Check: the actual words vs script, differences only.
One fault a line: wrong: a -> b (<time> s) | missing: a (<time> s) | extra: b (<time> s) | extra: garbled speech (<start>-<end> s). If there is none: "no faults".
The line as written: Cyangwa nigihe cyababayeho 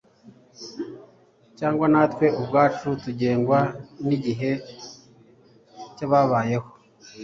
extra: natwe ubwacu tugengwa (1.9 s)